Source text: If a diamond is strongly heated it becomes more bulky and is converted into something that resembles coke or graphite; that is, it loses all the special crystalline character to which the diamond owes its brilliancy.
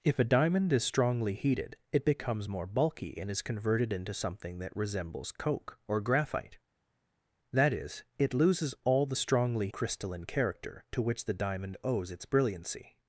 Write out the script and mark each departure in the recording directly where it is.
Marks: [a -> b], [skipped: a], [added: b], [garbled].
If a diamond is strongly heated it becomes more bulky and is converted into something that resembles coke or graphite; that is, it loses all the [special -> strongly] crystalline character to which the diamond owes its brilliancy.